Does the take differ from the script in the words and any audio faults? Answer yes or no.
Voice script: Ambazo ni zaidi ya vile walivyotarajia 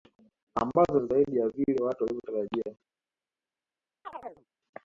yes